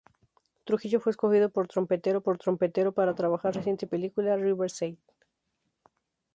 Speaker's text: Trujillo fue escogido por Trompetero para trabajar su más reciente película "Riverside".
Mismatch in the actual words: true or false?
true